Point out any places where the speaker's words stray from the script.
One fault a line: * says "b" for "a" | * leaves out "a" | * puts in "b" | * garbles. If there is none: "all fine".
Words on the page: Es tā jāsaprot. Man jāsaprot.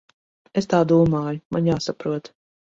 * says "domāju" for "jāsaprot"